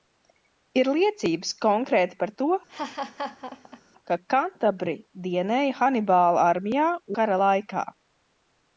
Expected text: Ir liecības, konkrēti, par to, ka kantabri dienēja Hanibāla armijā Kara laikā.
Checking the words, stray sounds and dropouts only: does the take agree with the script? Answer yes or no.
no